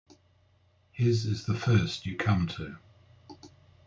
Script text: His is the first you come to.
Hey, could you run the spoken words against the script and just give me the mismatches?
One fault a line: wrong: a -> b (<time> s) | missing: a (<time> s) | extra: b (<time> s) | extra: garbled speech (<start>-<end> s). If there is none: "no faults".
no faults